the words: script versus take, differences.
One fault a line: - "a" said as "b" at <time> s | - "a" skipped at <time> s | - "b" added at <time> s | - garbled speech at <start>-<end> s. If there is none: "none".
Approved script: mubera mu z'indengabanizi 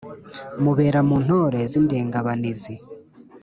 - "ntore" added at 1.2 s